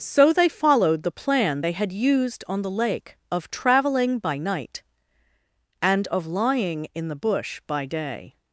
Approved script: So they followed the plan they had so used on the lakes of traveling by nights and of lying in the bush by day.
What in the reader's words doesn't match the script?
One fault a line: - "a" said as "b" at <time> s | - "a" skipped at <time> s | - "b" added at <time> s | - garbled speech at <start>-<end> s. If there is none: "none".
- "so" skipped at 1.9 s
- "lakes" said as "lake" at 2.7 s
- "nights" said as "night" at 4.4 s